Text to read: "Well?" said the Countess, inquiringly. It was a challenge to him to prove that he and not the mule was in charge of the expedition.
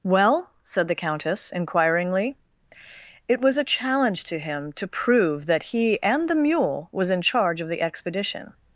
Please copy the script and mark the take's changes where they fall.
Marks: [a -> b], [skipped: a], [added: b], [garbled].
"Well?" said the Countess, inquiringly. It was a challenge to him to prove that he and [skipped: not] the mule was in charge of the expedition.